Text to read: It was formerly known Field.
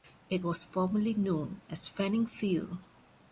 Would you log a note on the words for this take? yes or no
yes